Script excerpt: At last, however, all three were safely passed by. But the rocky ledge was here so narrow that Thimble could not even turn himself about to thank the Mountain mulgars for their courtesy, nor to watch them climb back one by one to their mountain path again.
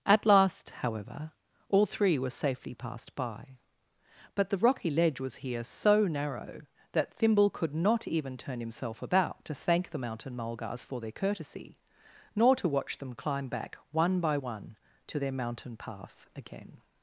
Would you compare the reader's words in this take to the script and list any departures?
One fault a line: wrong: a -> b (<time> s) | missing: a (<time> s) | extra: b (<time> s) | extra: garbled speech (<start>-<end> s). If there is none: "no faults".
no faults